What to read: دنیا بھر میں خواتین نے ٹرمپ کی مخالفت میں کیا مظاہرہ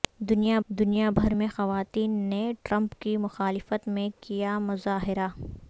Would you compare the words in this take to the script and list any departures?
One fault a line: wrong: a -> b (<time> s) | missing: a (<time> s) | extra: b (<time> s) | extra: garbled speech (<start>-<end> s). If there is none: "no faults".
extra: دنیا (0.7 s)